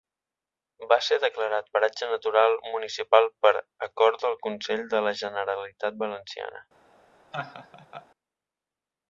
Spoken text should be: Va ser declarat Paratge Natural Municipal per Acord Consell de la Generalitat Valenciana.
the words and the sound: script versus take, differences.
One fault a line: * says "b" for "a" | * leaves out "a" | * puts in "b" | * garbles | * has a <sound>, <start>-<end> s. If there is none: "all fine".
* puts in "del"
* has a laugh, 7.3-8.1 s